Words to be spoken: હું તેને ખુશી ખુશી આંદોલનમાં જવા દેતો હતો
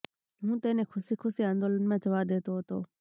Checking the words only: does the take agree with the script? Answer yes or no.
yes